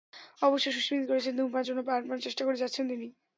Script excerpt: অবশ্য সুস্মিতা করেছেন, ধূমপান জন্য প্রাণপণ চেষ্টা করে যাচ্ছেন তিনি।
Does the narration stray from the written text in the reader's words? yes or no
no